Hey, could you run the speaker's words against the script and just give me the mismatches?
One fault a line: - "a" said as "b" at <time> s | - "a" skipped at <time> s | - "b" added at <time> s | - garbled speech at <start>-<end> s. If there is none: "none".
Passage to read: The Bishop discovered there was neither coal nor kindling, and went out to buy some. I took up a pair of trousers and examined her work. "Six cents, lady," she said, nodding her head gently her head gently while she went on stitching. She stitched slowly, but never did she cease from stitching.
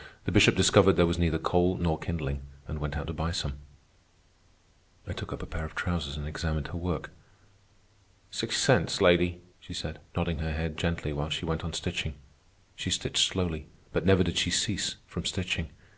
- "her head gently" skipped at 11.1 s